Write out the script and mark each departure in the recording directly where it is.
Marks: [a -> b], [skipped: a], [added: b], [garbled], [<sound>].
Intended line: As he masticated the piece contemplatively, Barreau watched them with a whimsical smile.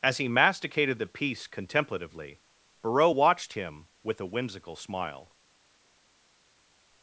As he masticated the piece contemplatively, Barreau watched [them -> him] with a whimsical smile.